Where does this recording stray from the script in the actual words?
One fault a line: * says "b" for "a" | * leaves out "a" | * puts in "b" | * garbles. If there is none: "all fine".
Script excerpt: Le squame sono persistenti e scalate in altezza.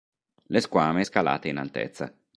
* leaves out "sono persistenti e"